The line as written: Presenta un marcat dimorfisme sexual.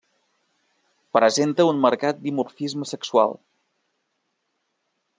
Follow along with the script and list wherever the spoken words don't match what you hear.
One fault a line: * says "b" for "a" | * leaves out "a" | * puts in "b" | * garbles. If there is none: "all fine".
all fine